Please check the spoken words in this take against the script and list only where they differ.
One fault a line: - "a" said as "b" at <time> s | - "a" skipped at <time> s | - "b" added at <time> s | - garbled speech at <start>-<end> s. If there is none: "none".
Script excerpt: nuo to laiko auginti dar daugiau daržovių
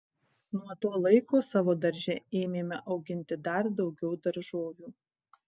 - "savo darže ėmėme" added at 1.5 s